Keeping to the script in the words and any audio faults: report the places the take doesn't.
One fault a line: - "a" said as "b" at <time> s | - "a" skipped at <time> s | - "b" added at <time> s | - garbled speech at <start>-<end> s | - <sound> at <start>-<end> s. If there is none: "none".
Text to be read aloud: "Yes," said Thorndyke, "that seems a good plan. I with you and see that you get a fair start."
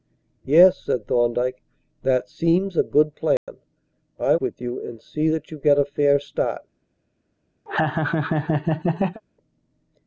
- dropout at 3.4-3.5 s
- laugh at 7.7-9.2 s